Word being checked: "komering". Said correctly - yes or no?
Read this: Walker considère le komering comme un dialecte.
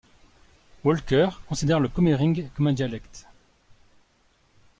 yes